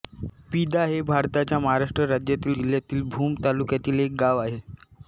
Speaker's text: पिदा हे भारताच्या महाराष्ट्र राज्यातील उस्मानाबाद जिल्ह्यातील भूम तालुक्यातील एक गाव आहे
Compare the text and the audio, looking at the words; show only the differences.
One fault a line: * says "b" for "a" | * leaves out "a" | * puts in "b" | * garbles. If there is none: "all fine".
* leaves out "उस्मानाबाद"